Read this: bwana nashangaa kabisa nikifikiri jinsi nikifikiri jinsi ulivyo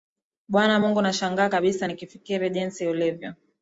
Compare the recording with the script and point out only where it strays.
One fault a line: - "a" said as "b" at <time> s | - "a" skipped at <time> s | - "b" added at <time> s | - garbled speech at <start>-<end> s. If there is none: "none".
- "mungu" added at 0.8 s
- "nikifikiri jinsi" skipped at 2.9 s